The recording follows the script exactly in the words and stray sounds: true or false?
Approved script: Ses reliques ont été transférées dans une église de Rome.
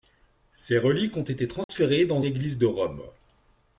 false